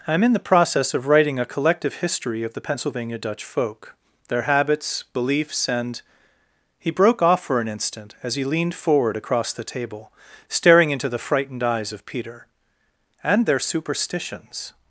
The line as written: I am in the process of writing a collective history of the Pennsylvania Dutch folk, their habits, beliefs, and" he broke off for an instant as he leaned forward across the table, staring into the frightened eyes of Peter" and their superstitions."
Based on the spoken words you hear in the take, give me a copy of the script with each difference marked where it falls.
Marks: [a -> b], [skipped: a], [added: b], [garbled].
I am in the process of writing a collective history of the Pennsylvania Dutch folk, their habits, beliefs, and" he broke off for an instant as he leaned forward across the table, staring into the frightened eyes of Peter" and their superstitions."